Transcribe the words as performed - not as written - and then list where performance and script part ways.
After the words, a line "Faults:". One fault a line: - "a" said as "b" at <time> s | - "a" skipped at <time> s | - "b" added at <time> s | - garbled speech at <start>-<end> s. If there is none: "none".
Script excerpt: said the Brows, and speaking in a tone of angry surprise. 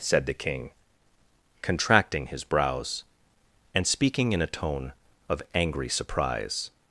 said the King, contracting his brows, and speaking in a tone of angry surprise.
Faults:
- "King contracting his" added at 0.3 s